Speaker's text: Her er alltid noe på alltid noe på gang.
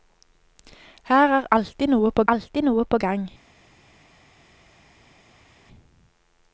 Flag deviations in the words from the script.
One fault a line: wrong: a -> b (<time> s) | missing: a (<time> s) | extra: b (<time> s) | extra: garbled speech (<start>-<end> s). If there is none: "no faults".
no faults